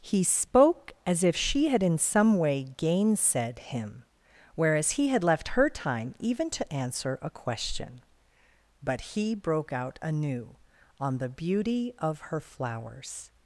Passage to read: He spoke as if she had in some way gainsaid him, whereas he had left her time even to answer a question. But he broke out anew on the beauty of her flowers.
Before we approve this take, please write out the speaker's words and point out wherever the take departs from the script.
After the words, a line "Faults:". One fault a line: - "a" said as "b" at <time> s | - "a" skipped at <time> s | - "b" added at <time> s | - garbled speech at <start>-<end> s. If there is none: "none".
He spoke as if she had in some way gainsaid him, whereas he had left her time even to answer a question. But he broke out anew on the beauty of her flowers.
Faults:
none